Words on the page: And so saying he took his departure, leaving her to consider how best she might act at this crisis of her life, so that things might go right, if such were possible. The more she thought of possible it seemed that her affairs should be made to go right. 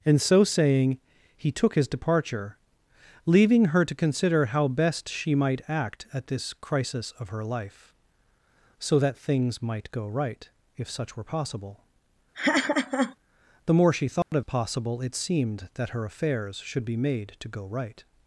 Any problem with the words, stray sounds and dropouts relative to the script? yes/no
yes